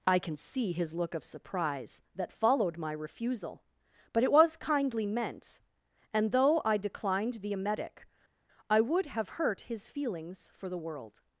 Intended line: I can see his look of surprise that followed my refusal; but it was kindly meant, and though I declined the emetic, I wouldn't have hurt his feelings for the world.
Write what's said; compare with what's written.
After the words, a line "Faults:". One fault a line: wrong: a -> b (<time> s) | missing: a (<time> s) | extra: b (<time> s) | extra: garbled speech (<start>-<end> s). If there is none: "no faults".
I can see his look of surprise that followed my refusal; but it was kindly meant, and though I declined the emetic, I would have hurt his feelings for the world.
Faults:
wrong: wouldn't -> would (8.8 s)